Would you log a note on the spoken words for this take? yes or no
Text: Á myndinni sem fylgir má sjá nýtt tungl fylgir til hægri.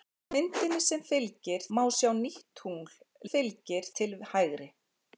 no